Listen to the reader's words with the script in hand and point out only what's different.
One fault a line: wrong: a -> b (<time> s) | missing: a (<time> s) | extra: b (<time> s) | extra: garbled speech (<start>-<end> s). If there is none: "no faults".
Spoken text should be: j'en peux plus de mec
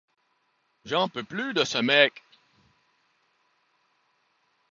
extra: ce (1.6 s)